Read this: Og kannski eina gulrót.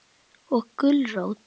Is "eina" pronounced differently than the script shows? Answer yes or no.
yes